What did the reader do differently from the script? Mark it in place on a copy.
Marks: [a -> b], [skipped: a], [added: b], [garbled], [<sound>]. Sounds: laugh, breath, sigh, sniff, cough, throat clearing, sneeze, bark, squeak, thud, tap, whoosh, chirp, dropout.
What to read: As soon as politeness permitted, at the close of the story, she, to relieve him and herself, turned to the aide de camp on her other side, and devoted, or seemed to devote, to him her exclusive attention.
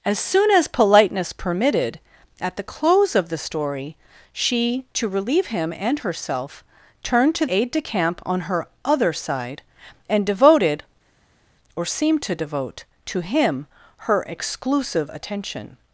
As soon as politeness permitted, at the close of the story, she, to relieve him and herself, turned to [skipped: the] aide de camp on her other side, and devoted, or seemed to devote, to him her exclusive attention.